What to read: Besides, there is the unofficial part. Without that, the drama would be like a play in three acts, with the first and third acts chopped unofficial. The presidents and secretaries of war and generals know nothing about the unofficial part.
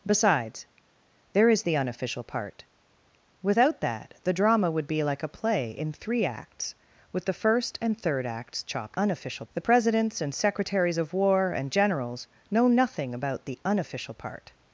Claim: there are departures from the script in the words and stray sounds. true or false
false